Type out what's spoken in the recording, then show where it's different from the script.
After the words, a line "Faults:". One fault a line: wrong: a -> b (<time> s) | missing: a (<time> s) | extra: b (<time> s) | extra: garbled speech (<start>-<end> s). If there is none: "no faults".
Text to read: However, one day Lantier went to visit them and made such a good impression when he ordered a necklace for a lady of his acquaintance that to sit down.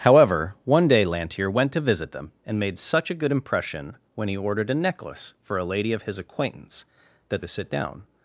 However, one day Lantier went to visit them and made such a good impression when he ordered a necklace for a lady of his acquaintance that to sit down.
Faults:
no faults